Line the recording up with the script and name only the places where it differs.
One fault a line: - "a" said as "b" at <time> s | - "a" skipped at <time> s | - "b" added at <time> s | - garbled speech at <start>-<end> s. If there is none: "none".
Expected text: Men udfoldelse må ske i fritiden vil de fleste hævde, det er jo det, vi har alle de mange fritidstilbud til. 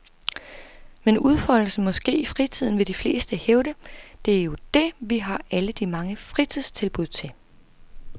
none